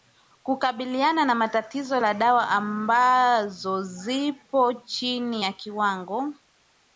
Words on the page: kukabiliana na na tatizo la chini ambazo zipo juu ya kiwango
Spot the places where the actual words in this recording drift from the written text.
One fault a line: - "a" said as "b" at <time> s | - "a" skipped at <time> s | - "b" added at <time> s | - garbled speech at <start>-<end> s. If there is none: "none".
- "na" skipped at 1.5 s
- "chini" said as "dawa" at 2.1 s
- "juu" said as "chini" at 4.7 s